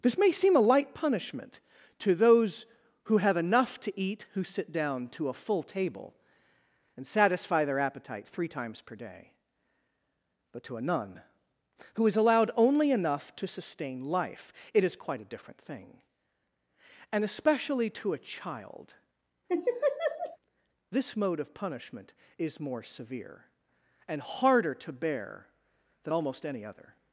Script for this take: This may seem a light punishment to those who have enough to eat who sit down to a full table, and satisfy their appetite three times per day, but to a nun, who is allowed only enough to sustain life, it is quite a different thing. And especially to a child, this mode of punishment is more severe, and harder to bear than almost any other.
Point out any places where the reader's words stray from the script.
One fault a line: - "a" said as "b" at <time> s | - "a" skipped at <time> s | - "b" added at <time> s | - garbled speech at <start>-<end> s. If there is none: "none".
none